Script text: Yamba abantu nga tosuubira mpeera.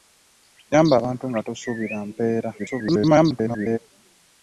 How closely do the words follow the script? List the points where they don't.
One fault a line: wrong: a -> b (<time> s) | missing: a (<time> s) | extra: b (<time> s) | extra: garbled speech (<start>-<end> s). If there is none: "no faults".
extra: garbled speech (2.6-3.8 s)